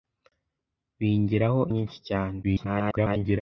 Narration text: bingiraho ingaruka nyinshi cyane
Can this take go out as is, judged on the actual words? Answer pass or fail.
fail